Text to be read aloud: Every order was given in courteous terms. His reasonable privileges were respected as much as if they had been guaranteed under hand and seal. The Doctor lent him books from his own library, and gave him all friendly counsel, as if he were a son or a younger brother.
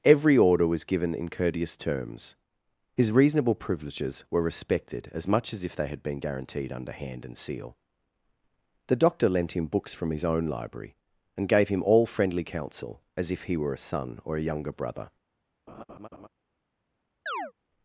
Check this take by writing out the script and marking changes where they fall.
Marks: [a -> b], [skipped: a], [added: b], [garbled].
Every order was given in courteous terms. His reasonable privileges were respected as much as if they had been guaranteed under hand and seal. The Doctor lent him books from his own library, and gave him all friendly counsel, as if he were a son or a younger brother.